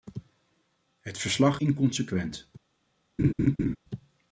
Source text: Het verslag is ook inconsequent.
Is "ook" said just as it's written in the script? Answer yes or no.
no